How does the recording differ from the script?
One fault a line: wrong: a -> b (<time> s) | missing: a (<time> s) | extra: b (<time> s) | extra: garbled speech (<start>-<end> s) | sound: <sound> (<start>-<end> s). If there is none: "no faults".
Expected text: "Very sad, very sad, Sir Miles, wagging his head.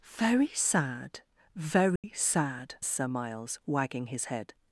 sound: dropout (2.0-2.0 s)